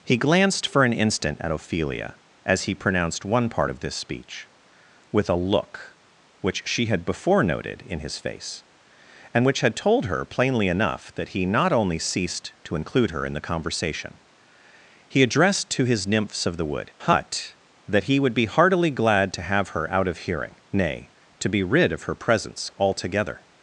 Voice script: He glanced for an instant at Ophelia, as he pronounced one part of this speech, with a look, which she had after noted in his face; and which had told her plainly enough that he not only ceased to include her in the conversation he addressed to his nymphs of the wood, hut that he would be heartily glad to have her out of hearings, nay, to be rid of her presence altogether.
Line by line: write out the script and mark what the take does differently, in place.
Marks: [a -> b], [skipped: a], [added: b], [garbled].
He glanced for an instant at Ophelia, as he pronounced one part of this speech, with a look, which she had [after -> before] noted in his face; and which had told her plainly enough that he not only ceased to include her in the conversation he addressed to his nymphs of the wood, hut that he would be heartily glad to have her out of [hearings, -> hearing] nay, to be rid of her presence altogether.